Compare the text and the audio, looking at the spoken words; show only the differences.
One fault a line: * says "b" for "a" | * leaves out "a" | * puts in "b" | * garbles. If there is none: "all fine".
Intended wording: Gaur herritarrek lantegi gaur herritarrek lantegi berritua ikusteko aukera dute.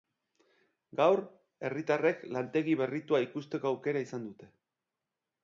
* leaves out "gaur herritarrek lantegi"
* puts in "izan"